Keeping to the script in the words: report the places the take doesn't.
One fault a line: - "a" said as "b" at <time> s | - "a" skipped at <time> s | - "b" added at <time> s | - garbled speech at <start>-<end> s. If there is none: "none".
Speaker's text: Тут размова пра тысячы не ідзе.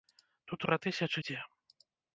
- "размова" skipped at 0.7 s
- "не" skipped at 1.2 s